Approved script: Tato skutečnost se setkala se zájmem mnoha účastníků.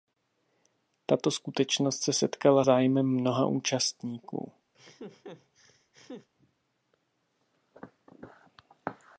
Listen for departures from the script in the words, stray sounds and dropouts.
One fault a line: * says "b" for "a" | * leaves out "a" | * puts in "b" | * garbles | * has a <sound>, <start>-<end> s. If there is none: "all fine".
* leaves out "se"
* has a laugh, 4.7-6.3 s